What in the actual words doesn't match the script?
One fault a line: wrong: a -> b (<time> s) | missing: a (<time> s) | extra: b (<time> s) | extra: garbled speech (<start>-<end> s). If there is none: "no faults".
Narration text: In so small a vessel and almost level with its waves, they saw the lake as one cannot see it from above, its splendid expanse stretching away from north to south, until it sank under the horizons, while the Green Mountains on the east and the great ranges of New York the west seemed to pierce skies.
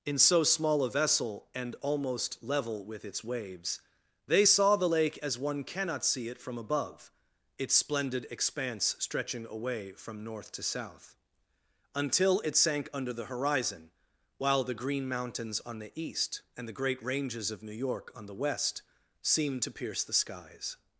wrong: horizons -> horizon (13.2 s)
extra: on (18.1 s)
extra: the (20.0 s)